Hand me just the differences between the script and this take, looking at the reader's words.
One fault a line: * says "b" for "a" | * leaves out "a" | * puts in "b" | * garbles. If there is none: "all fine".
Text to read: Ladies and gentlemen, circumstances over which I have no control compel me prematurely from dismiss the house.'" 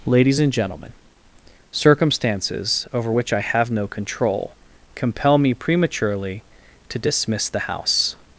* says "to" for "from"